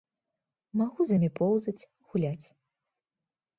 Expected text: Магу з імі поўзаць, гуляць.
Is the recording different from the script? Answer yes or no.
no